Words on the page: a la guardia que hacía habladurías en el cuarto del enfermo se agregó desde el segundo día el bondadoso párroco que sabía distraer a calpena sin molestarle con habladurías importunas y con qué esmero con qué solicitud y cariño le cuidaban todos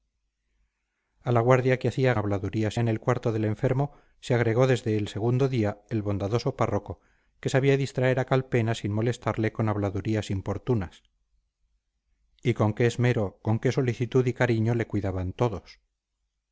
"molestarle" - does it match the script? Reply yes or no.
yes